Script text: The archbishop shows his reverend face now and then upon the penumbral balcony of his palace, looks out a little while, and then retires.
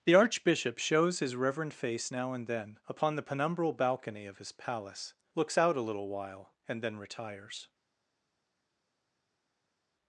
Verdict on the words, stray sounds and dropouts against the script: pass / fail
pass